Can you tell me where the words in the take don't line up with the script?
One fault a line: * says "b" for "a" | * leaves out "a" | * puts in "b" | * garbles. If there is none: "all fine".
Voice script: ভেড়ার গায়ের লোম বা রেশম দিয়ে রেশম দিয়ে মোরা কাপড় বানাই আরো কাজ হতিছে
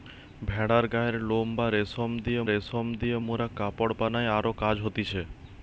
all fine